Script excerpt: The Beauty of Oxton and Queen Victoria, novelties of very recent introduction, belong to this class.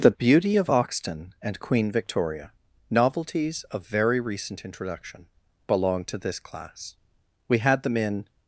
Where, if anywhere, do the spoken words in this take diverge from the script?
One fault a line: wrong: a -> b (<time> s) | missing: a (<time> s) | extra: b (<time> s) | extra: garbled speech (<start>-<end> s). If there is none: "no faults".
extra: We had them in (7.5 s)